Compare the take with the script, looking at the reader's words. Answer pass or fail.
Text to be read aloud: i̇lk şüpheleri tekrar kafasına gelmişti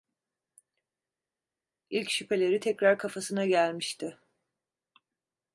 pass